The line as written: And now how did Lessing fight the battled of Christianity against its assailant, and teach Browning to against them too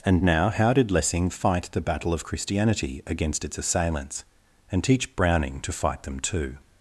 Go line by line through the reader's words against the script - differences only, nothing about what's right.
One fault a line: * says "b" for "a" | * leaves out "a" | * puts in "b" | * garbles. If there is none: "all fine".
* says "battle" for "battled"
* says "assailants" for "assailant"
* says "fight" for "against"